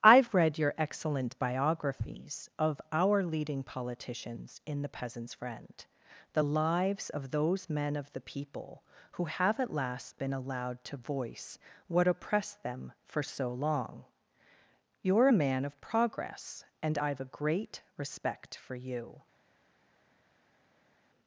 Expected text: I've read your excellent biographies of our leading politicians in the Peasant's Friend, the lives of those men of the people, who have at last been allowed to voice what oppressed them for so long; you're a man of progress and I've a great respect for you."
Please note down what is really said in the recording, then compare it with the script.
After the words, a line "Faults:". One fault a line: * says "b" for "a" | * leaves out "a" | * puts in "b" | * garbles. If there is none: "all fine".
I've read your excellent biographies of our leading politicians in the Peasant's Friend, the lives of those men of the people, who have at last been allowed to voice what oppressed them for so long; you're a man of progress and I've a great respect for you."
Faults:
all fine